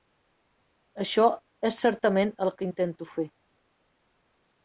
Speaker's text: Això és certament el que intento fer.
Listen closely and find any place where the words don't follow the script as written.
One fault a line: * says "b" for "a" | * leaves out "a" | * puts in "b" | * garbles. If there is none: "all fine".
all fine